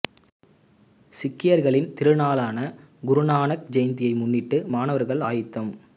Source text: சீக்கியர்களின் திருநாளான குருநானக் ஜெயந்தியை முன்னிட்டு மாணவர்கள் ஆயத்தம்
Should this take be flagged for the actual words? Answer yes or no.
no